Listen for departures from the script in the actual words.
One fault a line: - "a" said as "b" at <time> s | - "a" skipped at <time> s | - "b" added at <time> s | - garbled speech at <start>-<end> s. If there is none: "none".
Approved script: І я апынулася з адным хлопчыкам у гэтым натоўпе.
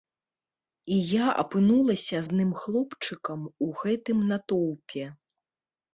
- "з" skipped at 2.2 s